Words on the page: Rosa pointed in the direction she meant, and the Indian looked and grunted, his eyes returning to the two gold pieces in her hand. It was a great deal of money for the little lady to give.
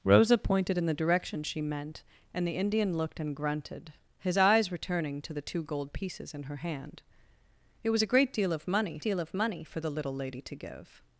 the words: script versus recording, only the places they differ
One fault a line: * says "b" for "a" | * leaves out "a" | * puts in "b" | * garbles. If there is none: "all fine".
* puts in "deal of money"